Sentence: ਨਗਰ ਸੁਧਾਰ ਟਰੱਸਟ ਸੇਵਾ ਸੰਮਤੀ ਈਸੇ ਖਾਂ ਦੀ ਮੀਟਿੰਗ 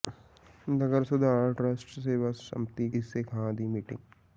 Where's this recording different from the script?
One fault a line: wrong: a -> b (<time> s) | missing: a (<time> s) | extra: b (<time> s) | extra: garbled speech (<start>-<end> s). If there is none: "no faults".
no faults